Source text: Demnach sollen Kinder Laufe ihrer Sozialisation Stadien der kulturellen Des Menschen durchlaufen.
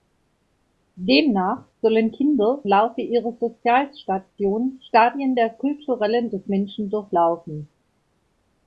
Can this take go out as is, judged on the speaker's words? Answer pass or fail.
pass